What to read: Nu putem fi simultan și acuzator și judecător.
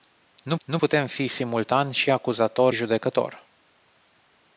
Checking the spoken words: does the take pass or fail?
fail